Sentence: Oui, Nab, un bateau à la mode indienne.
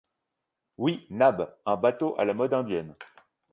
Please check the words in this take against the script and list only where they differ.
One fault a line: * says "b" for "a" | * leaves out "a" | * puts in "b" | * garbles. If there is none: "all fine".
all fine